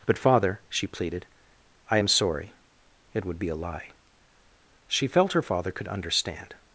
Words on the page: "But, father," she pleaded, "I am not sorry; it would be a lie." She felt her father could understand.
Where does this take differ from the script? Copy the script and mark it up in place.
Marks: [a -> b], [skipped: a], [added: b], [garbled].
"But, father," she pleaded, "I am [skipped: not] sorry; it would be a lie." She felt her father could understand.